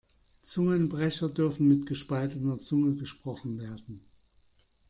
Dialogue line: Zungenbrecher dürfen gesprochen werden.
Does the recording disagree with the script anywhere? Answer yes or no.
yes